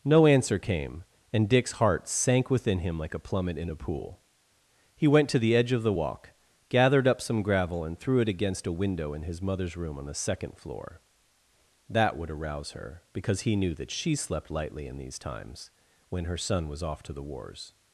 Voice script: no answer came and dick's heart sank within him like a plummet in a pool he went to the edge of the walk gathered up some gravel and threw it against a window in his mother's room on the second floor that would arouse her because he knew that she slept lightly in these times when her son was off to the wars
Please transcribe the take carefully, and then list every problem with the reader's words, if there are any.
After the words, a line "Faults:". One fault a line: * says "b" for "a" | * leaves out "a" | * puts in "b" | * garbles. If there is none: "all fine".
no answer came and dick's heart sank within him like a plummet in a pool he went to the edge of the walk gathered up some gravel and threw it against a window in his mother's room on the second floor that would arouse her because he knew that she slept lightly in these times when her son was off to the wars
Faults:
all fine